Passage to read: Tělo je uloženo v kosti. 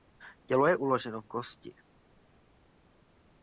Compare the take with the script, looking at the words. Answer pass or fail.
pass